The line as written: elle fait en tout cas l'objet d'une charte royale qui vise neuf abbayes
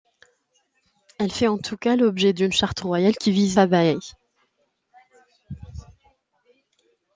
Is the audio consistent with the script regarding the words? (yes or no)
no